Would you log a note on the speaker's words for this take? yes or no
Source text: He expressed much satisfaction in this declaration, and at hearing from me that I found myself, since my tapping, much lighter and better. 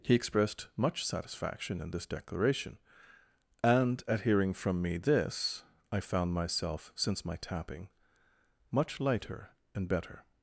yes